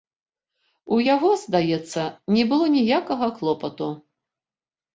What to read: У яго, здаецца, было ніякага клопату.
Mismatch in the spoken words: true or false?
true